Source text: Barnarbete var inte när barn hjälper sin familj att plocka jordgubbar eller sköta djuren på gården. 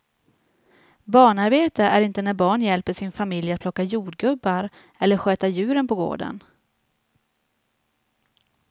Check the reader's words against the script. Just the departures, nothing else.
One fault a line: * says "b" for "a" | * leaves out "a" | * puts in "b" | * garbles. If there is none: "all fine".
* says "är" for "var"